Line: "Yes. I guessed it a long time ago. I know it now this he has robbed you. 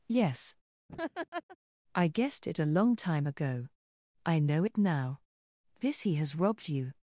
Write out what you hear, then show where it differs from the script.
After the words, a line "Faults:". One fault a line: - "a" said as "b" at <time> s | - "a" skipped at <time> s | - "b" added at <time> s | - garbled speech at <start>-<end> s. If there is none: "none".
"Yes. I guessed it a long time ago. I know it now this he has robbed you.
Faults:
none